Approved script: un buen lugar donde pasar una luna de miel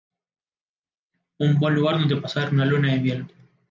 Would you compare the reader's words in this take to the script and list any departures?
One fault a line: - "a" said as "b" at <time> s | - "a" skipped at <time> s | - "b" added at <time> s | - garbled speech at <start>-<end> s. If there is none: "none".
none